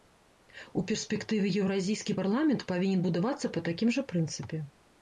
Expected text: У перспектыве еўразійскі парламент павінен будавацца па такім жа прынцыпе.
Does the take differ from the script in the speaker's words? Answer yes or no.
no